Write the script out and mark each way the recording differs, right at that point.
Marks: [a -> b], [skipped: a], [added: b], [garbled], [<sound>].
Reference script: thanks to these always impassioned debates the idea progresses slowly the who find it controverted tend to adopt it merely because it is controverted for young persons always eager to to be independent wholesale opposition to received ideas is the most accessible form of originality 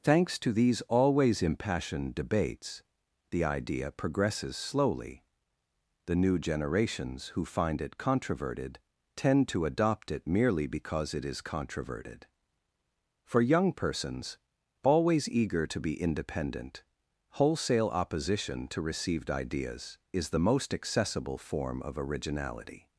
thanks to these always impassioned debates the idea progresses slowly the [added: new generations] who find it controverted tend to adopt it merely because it is controverted for young persons always eager to [skipped: to] be independent wholesale opposition to received ideas is the most accessible form of originality